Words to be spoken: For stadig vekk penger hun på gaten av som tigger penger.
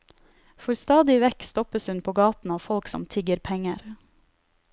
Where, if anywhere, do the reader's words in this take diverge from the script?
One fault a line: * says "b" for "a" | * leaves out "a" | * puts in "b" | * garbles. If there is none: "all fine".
* says "stoppes" for "penger"
* puts in "folk"